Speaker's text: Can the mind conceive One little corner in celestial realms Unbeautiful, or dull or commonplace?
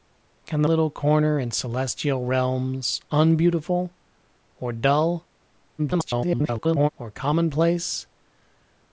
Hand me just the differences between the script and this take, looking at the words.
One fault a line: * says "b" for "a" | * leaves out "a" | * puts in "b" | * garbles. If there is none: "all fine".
* leaves out "mind conceive One"
* garbles